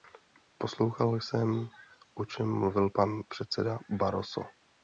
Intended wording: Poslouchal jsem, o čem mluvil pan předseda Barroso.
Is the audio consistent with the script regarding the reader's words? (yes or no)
yes